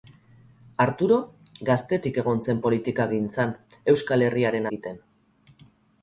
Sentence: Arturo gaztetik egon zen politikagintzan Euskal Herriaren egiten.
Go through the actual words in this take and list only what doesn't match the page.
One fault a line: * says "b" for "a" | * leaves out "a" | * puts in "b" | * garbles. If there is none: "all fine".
all fine